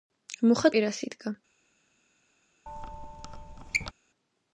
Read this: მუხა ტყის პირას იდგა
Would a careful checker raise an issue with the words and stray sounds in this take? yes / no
yes